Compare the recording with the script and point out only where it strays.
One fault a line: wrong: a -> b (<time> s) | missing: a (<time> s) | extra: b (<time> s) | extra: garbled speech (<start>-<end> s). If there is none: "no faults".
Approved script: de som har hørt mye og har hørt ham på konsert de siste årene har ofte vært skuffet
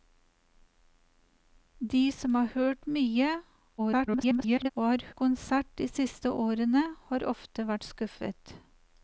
extra: garbled speech (3.8-4.7 s)
missing: hørt ham på (5.1 s)